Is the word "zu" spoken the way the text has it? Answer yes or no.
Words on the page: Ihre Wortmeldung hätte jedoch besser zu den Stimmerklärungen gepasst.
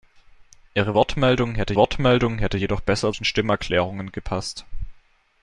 no